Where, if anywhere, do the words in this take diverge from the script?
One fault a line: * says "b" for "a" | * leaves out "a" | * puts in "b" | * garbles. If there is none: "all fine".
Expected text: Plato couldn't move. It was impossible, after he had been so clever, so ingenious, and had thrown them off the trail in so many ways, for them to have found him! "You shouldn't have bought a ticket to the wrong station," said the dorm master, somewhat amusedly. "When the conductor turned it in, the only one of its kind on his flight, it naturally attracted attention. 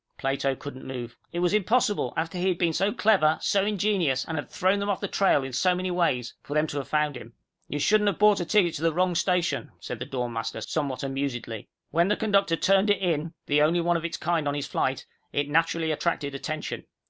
all fine